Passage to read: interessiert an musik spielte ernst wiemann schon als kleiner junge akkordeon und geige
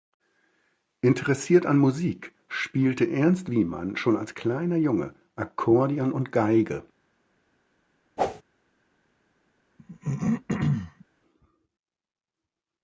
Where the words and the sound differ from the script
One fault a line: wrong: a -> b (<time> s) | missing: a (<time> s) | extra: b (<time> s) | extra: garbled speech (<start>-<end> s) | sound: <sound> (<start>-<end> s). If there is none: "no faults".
sound: whoosh (8.2-8.4 s)
sound: throat clearing (9.8-11.0 s)